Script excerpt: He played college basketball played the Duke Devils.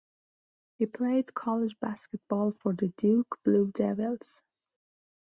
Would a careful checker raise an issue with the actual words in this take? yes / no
yes